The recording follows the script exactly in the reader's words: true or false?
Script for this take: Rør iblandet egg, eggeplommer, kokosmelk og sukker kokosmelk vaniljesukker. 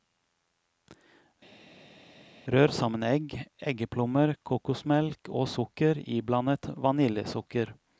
false